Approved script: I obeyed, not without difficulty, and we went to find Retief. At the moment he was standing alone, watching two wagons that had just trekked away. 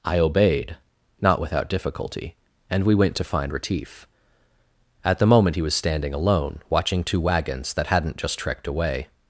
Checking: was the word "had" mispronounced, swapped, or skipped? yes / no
yes